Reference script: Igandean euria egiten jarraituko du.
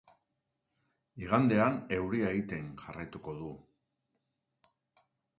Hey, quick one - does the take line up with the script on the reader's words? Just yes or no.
yes